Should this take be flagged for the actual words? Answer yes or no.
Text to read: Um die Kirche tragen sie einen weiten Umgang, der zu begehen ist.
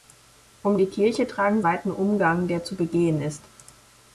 yes